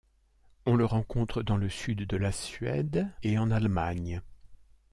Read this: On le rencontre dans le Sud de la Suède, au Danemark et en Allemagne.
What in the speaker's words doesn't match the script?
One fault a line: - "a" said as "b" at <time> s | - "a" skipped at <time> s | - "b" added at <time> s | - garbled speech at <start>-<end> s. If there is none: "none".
- "au Danemark" skipped at 3.1 s